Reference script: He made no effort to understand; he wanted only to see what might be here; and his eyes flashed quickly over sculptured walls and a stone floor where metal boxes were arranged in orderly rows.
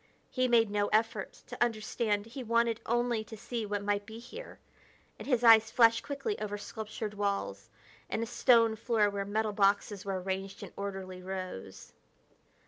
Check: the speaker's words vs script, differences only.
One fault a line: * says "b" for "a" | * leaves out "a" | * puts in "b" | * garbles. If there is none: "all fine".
all fine